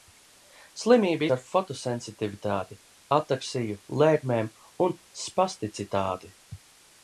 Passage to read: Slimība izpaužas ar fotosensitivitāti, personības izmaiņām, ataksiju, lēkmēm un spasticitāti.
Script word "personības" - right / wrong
wrong